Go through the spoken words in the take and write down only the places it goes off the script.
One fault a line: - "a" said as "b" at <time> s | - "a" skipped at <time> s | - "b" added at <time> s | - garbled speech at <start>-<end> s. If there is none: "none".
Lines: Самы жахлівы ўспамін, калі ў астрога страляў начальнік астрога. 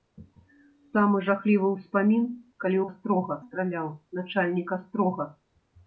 none